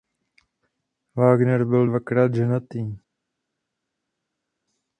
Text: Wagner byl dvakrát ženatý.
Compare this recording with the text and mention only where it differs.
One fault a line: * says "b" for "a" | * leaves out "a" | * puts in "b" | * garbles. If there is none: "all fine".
all fine